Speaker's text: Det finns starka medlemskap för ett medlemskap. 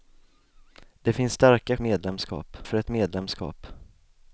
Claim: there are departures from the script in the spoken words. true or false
false